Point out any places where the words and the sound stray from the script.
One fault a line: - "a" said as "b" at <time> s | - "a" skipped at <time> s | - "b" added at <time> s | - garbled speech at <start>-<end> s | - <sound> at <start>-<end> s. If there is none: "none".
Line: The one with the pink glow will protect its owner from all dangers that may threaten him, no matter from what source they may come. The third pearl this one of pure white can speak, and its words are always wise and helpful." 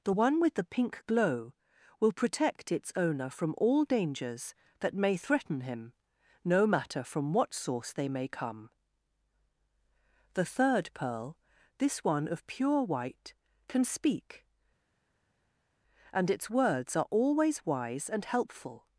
none